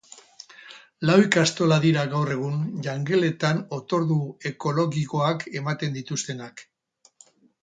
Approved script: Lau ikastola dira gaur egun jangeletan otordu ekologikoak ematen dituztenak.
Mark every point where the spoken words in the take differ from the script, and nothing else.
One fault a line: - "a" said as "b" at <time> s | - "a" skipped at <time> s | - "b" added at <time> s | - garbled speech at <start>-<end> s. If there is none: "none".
none